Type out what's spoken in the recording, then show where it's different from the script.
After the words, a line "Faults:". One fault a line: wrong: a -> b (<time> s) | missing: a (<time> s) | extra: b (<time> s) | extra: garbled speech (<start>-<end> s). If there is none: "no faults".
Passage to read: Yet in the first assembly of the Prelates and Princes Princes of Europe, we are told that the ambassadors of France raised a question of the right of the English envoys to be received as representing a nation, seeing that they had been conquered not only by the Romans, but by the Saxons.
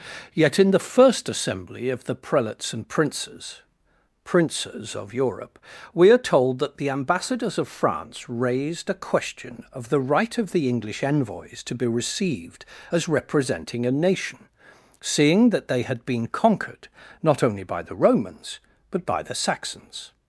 Yet in the first assembly of the Prelates and Princes Princes of Europe, we are told that the ambassadors of France raised a question of the right of the English envoys to be received as representing a nation, seeing that they had been conquered not only by the Romans, but by the Saxons.
Faults:
no faults